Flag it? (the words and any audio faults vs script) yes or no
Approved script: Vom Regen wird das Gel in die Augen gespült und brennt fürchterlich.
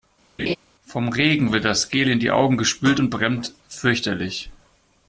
yes